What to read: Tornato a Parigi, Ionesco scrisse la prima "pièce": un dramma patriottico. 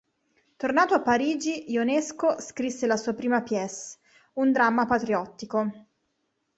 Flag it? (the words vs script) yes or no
yes